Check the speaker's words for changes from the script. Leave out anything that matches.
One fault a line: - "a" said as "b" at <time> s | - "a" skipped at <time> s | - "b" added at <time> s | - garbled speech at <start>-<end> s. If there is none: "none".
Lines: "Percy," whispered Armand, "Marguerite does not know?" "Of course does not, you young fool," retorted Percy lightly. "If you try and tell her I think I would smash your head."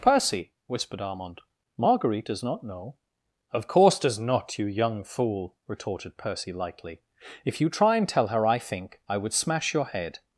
none